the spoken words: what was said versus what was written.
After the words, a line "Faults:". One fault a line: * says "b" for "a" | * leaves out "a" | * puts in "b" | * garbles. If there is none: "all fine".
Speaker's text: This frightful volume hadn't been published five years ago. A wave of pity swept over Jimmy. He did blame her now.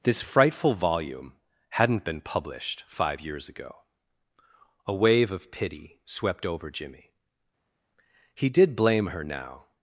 This frightful volume hadn't been published five years ago. A wave of pity swept over Jimmy. He did blame her now.
Faults:
all fine